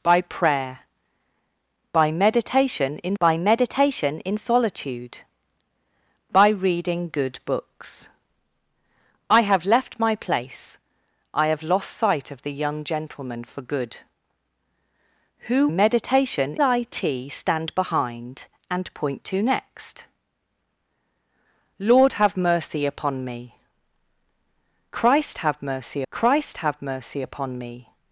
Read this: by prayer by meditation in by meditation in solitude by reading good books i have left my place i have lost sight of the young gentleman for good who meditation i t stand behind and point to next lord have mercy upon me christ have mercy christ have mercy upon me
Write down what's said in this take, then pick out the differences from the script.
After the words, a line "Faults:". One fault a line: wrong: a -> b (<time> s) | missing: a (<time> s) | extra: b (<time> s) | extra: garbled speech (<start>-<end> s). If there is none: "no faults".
by prayer by meditation in by meditation in solitude by reading good books i have left my place i have lost sight of the young gentleman for good who meditation i t stand behind and point to next lord have mercy upon me christ have mercy christ have mercy upon me
Faults:
no faults